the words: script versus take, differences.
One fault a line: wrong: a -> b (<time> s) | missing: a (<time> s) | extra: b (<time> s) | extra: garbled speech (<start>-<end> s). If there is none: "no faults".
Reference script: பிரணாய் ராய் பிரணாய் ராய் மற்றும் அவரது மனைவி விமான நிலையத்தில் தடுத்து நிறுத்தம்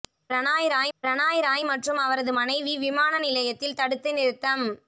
no faults